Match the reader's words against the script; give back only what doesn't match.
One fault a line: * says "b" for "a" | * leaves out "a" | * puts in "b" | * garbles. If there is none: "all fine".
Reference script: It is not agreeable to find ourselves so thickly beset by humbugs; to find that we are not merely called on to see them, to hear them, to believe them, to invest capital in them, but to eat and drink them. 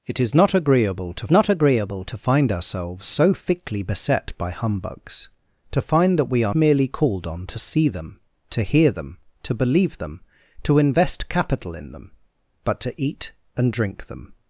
* puts in "not agreeable to"
* leaves out "not"